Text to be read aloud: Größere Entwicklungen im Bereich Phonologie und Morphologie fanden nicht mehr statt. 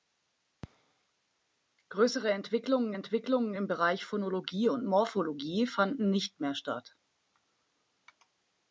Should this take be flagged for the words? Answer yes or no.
yes